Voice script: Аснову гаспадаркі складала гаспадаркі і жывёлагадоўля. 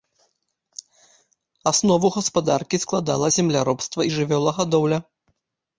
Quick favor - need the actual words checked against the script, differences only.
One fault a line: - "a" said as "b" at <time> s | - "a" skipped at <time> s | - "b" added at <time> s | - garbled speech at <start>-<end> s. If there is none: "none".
- "гаспадаркі" said as "земляробства" at 3.4 s